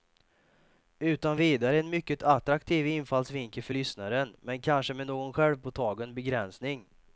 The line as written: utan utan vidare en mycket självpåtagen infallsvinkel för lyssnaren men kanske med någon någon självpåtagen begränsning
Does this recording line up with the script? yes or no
no